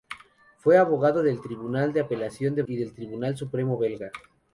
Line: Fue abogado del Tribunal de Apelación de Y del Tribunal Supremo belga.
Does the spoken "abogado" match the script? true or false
true